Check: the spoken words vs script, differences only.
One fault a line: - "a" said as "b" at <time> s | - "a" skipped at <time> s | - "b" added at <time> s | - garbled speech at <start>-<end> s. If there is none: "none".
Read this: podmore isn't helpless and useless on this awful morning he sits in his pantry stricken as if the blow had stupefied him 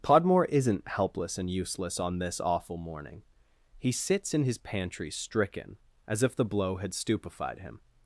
none